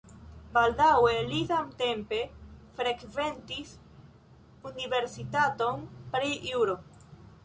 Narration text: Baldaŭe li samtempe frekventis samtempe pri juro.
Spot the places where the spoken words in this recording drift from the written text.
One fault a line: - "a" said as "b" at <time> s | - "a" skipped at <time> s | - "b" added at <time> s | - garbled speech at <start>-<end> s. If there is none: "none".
- "samtempe" said as "universitaton" at 4.7 s